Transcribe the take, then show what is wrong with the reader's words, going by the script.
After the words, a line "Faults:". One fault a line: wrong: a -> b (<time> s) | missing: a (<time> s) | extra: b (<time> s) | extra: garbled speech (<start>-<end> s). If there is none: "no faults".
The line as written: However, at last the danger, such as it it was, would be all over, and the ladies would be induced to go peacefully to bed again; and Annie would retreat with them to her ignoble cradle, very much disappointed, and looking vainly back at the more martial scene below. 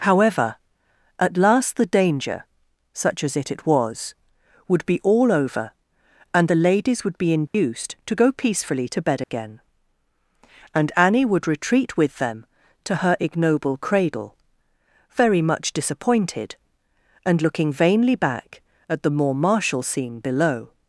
However, at last the danger, such as it it was, would be all over, and the ladies would be induced to go peacefully to bed again; and Annie would retreat with them to her ignoble cradle, very much disappointed, and looking vainly back at the more martial scene below.
Faults:
no faults